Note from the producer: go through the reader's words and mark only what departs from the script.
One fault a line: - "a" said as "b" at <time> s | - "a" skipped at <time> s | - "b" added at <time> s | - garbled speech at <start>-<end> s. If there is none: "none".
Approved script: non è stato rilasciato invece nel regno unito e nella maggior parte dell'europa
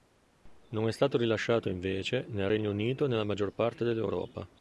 none